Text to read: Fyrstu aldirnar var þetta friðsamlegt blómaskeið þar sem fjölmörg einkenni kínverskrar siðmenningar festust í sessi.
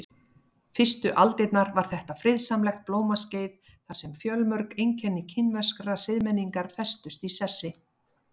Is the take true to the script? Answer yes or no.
yes